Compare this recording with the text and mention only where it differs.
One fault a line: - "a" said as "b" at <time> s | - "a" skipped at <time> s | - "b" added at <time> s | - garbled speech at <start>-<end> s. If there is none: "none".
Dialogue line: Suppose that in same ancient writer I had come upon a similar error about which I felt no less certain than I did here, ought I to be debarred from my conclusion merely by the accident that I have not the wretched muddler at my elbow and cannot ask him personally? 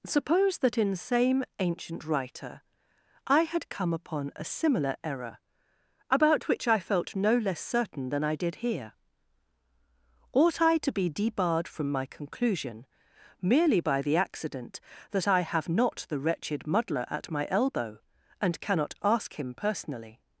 none